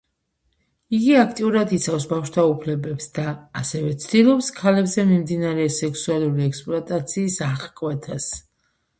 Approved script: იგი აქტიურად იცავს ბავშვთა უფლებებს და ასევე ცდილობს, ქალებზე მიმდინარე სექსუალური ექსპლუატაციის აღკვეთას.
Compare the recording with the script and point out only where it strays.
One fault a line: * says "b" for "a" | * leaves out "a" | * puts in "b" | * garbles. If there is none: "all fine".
all fine